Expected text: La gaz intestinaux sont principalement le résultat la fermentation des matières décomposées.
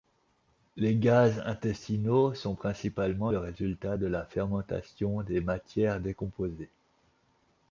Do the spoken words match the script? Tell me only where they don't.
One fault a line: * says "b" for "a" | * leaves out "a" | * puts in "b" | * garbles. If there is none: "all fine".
* says "Les" for "La"
* puts in "de"